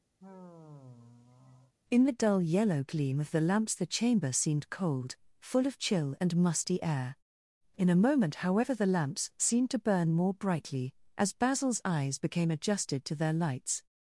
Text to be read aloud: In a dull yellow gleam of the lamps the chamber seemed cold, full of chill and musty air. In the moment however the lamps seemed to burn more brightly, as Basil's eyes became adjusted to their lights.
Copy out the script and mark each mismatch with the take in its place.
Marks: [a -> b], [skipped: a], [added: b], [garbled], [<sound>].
[sigh] In [a -> the] dull yellow gleam of the lamps the chamber seemed cold, full of chill and musty air. In [the -> a] moment however the lamps seemed to burn more brightly, as Basil's eyes became adjusted to their lights.